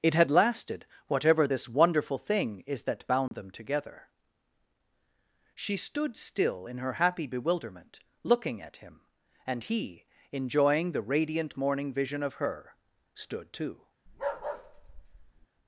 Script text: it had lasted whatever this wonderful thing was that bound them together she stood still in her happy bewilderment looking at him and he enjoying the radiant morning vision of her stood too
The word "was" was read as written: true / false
false